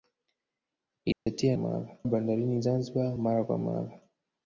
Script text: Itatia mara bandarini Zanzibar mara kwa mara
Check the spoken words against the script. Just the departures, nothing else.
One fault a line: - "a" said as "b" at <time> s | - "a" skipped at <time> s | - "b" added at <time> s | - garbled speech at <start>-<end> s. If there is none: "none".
none